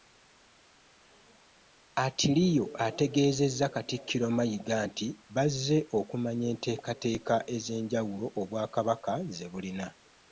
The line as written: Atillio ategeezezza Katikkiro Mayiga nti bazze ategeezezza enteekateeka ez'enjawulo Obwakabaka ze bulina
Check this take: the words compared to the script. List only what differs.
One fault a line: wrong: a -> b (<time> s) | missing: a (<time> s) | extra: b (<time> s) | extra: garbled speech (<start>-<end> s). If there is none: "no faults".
wrong: ategeezezza -> okumanya (6.0 s)